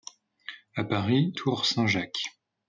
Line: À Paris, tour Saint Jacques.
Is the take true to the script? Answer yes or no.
yes